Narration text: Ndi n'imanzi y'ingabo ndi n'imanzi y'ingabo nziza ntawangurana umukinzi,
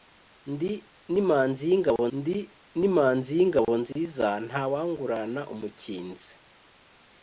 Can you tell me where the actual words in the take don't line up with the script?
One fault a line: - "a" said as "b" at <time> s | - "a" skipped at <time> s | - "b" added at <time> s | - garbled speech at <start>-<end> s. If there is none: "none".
none